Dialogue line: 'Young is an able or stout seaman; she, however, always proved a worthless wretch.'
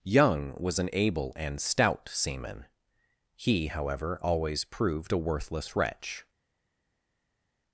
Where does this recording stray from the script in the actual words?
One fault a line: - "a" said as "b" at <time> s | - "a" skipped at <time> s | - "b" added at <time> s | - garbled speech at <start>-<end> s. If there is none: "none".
- "is" said as "was" at 0.6 s
- "or" said as "and" at 1.4 s
- "she" said as "he" at 3.4 s